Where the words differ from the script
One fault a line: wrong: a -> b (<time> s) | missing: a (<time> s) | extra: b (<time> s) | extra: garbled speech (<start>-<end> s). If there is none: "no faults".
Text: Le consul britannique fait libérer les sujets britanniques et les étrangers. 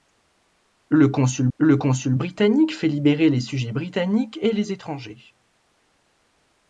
extra: le consul (1.6 s)